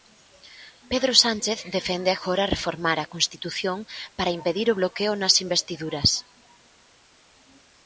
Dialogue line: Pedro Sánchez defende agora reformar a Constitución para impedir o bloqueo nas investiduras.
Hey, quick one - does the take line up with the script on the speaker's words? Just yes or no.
yes